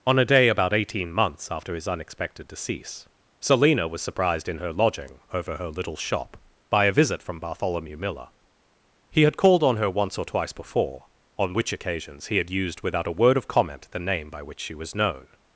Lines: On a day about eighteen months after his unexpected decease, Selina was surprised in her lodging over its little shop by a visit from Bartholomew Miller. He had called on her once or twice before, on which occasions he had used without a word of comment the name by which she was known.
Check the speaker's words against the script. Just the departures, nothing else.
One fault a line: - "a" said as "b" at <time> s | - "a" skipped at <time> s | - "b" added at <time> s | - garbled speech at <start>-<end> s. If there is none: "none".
- "its" said as "her" at 5.6 s